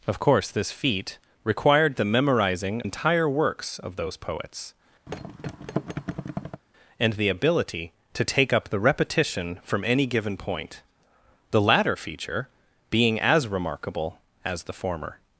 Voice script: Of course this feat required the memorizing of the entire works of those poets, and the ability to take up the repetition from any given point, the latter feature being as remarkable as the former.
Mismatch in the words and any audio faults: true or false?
true